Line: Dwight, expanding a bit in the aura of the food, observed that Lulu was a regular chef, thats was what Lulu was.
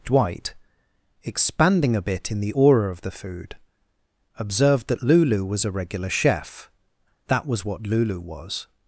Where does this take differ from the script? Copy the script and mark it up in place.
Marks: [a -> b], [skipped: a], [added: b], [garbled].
Dwight, expanding a bit in the aura of the food, observed that Lulu was a regular chef, [thats -> that] was what Lulu was.